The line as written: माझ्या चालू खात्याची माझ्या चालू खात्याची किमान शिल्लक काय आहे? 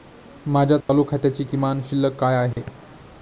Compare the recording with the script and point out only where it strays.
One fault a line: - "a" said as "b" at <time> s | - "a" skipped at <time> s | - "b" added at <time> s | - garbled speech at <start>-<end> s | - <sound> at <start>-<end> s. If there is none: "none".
- dropout at 0.8-0.9 s
- "माझ्या चालू खात्याची" skipped at 1.4 s
- dropout at 2.5-2.6 s